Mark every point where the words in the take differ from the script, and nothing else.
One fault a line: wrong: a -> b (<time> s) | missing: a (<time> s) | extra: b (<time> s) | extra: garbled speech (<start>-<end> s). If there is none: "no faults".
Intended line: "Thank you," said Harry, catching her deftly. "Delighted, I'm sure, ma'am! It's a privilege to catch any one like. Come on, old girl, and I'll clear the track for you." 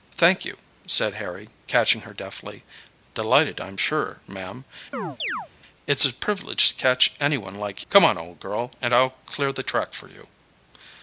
no faults